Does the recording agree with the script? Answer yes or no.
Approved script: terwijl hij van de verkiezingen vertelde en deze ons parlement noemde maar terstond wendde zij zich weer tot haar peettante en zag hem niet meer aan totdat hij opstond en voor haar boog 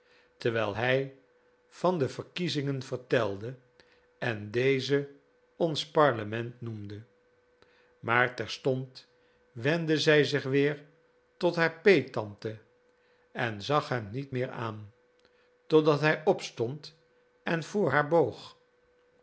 yes